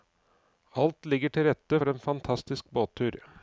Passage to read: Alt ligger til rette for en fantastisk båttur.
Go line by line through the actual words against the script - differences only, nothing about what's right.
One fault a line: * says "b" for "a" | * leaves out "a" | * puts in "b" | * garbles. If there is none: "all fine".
all fine